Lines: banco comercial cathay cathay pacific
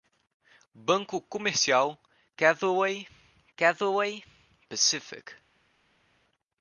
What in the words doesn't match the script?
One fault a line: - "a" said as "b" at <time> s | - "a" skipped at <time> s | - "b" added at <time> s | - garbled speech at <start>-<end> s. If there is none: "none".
none